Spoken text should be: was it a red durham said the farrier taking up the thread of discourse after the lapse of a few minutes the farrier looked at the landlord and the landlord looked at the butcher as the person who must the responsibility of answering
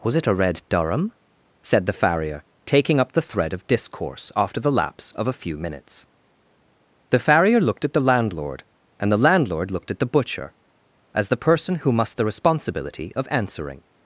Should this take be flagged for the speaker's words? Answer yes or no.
no